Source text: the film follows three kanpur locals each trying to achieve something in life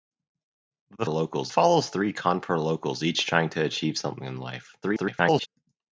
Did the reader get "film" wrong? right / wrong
wrong